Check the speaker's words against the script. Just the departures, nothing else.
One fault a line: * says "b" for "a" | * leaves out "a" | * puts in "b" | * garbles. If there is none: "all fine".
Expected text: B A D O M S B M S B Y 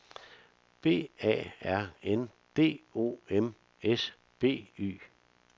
* puts in "R N"
* leaves out "M S B"